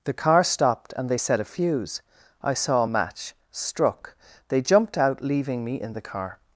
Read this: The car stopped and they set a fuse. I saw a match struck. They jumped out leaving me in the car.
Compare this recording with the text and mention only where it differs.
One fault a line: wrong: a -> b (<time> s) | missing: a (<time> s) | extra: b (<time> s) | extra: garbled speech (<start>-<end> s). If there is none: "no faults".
no faults